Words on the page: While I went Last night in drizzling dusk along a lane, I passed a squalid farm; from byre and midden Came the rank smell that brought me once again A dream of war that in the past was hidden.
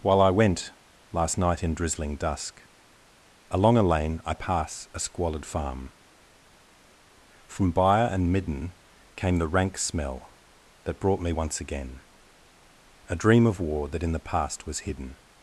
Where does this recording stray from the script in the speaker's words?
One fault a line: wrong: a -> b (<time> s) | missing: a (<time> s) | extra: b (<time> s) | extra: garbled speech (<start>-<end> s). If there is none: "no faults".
wrong: passed -> pass (4.3 s)